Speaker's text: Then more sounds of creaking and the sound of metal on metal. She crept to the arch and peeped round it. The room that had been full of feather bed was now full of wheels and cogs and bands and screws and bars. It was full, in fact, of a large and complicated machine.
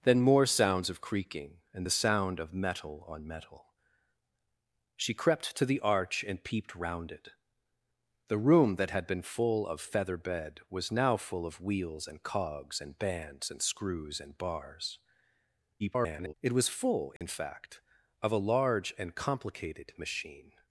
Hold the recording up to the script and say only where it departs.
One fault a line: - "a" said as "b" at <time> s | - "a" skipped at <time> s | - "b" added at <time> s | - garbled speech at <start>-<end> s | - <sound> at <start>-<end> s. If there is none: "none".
- garbled speech at 15.8-16.3 s
- dropout at 17.2-17.2 s